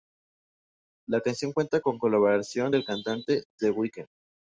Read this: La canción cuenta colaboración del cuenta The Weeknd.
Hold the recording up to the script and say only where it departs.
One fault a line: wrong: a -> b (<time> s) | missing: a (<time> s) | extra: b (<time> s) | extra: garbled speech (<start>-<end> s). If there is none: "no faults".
extra: con (1.8 s)
wrong: cuenta -> cantante (2.8 s)